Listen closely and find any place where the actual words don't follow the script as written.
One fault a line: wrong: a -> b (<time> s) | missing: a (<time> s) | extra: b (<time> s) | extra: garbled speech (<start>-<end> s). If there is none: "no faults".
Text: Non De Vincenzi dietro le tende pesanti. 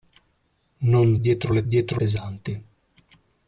missing: De Vincenzi (1.1 s)
wrong: tende -> dietro (1.7 s)